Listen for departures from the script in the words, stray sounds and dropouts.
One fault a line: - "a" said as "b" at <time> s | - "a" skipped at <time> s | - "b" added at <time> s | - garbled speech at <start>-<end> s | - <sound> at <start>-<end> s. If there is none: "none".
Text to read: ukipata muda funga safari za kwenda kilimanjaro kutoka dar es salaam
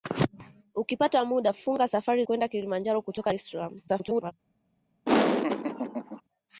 - "za" skipped at 2.2 s
- "dar" skipped at 3.3 s
- garbled speech at 3.9-4.3 s
- laugh at 5.1-6.2 s